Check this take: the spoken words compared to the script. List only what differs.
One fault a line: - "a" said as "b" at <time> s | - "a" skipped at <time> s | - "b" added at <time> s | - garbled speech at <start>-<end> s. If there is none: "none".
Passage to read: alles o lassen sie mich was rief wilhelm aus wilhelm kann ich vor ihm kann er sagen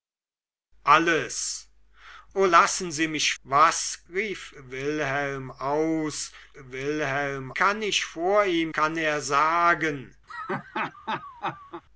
none